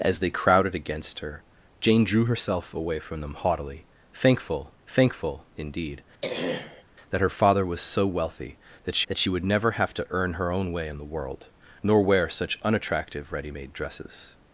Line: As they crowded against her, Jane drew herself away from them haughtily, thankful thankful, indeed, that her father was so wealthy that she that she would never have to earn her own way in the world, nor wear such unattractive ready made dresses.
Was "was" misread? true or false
false